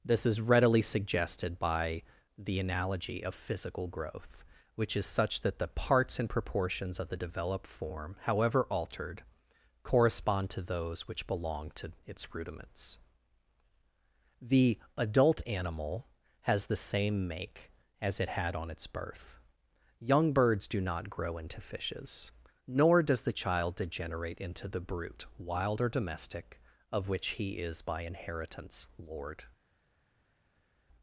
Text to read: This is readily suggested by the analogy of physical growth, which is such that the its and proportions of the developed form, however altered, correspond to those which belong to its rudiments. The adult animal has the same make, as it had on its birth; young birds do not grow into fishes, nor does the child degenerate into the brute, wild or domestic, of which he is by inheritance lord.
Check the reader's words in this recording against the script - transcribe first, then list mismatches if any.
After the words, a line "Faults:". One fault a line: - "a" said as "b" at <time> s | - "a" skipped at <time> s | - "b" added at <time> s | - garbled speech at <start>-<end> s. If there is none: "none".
This is readily suggested by the analogy of physical growth, which is such that the parts and proportions of the developed form, however altered, correspond to those which belong to its rudiments. The adult animal has the same make, as it had on its birth; young birds do not grow into fishes, nor does the child degenerate into the brute, wild or domestic, of which he is by inheritance lord.
Faults:
- "its" said as "parts" at 5.7 s